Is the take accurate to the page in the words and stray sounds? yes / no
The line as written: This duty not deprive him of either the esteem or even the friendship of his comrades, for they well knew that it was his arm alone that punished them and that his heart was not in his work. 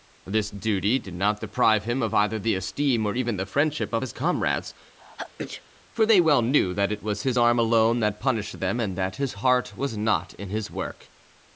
no